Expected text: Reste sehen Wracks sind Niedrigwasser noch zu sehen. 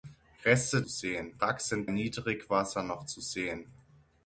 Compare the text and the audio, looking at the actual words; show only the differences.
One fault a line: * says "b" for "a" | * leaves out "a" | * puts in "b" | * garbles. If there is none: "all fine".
all fine